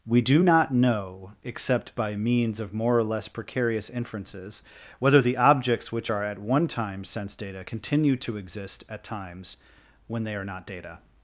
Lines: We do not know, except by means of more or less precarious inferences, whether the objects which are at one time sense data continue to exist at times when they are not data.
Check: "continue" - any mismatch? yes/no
no